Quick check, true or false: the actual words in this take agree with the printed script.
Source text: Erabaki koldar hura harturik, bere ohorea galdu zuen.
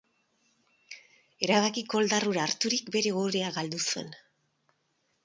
true